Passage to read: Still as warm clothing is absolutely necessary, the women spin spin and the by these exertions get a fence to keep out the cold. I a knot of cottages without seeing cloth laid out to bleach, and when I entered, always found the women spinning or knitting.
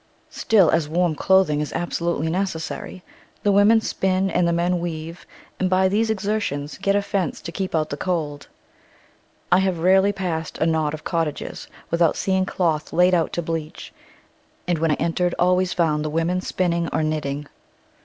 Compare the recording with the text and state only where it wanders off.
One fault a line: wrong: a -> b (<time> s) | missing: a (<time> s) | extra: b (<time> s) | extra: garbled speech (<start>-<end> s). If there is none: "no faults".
missing: spin (4.3 s)
extra: men weave and (4.5 s)
extra: have rarely passed (9.6 s)